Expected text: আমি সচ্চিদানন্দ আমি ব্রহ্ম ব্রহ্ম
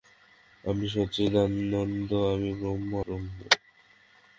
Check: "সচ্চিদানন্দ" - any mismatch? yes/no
no